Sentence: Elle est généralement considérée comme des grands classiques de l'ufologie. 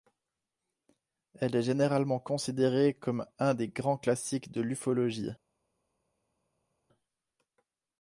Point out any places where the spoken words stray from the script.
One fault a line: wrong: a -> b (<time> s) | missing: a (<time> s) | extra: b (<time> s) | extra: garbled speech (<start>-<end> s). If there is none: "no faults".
extra: un (3.4 s)